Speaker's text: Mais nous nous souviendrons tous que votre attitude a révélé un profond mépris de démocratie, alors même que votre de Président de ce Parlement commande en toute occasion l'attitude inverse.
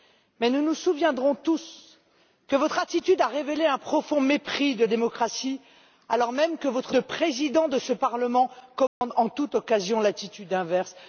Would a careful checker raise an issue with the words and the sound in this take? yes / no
yes